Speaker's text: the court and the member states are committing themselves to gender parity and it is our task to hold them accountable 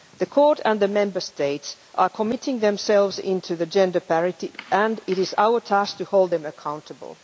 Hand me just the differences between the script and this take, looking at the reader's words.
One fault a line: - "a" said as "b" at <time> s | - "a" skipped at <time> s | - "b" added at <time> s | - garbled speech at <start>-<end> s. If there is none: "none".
none